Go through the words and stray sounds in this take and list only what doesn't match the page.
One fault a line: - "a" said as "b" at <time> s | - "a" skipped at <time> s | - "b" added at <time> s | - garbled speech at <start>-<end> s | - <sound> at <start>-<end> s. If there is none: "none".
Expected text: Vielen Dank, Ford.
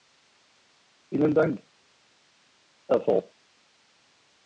- "Herr" added at 2.9 s